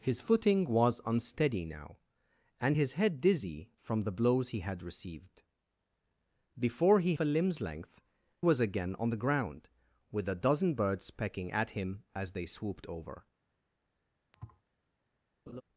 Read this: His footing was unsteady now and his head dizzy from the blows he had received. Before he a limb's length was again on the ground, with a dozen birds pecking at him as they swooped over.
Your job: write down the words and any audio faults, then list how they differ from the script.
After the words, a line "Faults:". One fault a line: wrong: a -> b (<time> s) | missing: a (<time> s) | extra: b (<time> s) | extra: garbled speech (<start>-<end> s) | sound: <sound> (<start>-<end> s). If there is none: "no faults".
His footing was unsteady now and his head dizzy from the blows he had received. Before he a limb's length was again on the ground, with a dozen birds pecking at him as they swooped over.
Faults:
sound: thud (14.3-14.6 s)
sound: laugh (15.5-15.6 s)